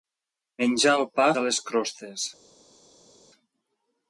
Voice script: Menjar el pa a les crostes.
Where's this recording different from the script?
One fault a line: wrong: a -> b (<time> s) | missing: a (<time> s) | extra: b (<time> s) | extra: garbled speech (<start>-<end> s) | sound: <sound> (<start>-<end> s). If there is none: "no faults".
no faults